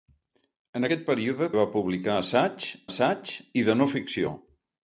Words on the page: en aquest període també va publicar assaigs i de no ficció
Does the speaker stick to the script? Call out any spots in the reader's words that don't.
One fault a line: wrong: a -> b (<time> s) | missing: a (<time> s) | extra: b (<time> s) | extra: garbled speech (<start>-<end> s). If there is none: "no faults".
missing: també (1.5 s)
extra: assaigs (2.9 s)